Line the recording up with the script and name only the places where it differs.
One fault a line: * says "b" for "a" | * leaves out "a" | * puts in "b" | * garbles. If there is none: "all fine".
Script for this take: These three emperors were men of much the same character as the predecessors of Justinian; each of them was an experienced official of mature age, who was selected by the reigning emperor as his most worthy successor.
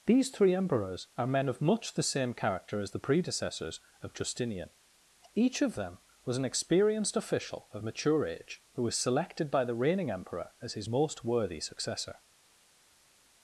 * says "are" for "were"